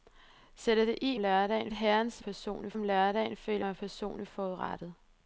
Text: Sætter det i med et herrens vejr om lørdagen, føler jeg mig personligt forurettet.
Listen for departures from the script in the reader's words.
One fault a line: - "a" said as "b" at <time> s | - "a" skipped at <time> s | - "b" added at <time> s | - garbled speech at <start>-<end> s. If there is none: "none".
- "med" said as "lørdagen" at 1.2 s
- "vejr" said as "personligt" at 2.2 s
- "jeg" skipped at 3.6 s